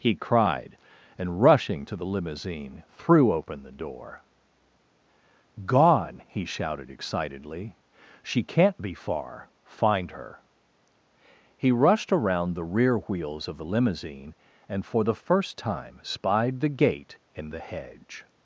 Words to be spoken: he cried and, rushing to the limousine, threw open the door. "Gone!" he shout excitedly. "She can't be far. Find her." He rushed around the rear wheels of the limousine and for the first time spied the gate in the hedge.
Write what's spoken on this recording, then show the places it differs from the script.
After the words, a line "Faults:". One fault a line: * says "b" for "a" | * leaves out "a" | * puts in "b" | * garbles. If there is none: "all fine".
he cried and, rushing to the limousine, threw open the door. "Gone!" he shouted excitedly. "She can't be far. Find her." He rushed around the rear wheels of the limousine and for the first time spied the gate in the hedge.
Faults:
* says "shouted" for "shout"